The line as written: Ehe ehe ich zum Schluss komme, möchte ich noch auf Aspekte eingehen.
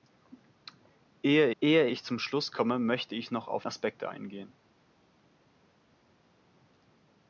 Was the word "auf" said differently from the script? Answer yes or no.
no